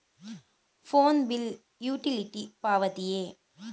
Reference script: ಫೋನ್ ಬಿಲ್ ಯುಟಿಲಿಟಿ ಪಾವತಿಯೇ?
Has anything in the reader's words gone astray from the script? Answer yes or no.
no